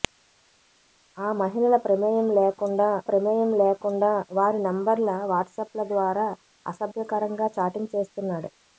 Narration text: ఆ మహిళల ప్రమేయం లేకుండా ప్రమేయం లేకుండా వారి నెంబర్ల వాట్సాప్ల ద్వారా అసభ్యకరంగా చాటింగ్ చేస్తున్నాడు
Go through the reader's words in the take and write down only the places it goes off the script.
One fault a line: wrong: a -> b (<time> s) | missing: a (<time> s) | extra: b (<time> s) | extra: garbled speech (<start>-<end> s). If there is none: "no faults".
no faults